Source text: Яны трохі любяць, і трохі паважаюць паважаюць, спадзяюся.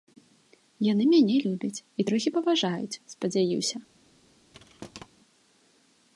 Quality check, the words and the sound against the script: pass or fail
fail